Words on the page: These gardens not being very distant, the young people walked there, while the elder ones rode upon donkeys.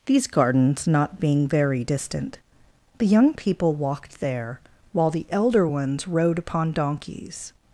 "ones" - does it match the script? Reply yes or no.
yes